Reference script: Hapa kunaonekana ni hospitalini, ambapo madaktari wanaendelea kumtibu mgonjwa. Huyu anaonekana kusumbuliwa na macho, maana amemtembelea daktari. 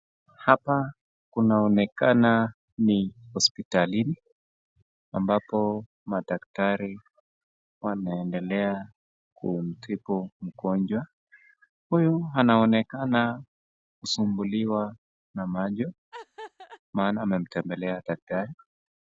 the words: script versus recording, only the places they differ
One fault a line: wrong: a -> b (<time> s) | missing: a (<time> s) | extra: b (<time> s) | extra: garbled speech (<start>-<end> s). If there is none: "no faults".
no faults